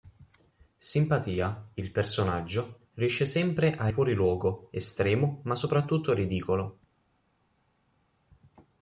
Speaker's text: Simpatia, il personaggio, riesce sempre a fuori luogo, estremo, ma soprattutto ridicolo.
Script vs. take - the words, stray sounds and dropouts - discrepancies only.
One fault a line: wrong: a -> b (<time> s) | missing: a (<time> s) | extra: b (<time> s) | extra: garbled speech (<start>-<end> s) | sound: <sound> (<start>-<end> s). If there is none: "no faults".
no faults